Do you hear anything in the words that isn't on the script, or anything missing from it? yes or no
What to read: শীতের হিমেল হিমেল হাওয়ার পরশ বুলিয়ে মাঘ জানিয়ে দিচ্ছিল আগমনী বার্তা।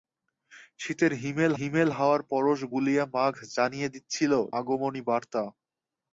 no